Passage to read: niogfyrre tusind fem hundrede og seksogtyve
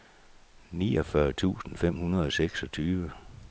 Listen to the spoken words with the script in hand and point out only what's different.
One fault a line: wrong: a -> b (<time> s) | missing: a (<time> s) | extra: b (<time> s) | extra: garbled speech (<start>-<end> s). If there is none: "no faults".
no faults